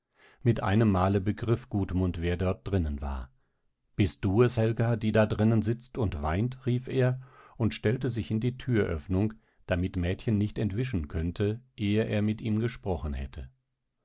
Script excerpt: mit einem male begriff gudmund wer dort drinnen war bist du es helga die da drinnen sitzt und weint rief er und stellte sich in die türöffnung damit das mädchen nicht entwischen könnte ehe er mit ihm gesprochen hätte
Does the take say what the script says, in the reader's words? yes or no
no